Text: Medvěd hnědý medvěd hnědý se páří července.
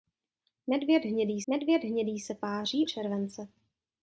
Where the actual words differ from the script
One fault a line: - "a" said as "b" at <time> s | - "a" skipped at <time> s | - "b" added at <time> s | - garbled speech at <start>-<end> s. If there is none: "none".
none